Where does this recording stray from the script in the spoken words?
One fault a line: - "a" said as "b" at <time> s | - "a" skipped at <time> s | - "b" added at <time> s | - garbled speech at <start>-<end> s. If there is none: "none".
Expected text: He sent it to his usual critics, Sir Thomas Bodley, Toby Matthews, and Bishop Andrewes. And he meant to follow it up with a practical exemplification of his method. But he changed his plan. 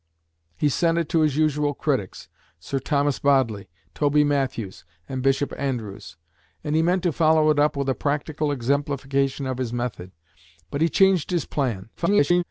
- garbled speech at 12.0-12.4 s